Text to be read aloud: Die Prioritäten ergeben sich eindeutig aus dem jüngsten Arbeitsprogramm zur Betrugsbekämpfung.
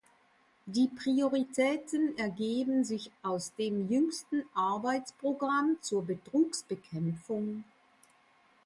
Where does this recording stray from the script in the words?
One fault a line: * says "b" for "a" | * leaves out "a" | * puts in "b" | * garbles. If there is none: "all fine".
* leaves out "eindeutig"